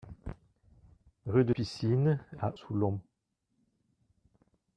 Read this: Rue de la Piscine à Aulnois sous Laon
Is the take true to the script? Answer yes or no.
no